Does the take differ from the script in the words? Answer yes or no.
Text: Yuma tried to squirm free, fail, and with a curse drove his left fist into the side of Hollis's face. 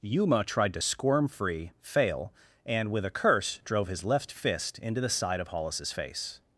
no